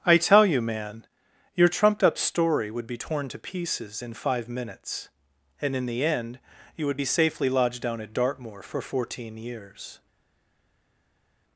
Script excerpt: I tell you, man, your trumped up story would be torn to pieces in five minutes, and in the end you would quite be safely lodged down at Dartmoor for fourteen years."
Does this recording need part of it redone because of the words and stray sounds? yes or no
yes